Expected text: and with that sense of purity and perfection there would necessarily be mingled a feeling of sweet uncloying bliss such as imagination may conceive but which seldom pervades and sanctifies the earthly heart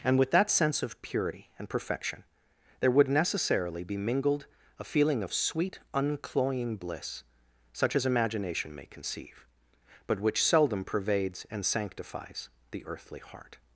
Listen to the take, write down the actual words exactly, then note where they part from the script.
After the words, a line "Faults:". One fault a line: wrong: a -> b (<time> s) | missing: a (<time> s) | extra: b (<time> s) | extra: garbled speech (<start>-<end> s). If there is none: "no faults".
and with that sense of purity and perfection there would necessarily be mingled a feeling of sweet uncloying bliss such as imagination may conceive but which seldom pervades and sanctifies the earthly heart
Faults:
no faults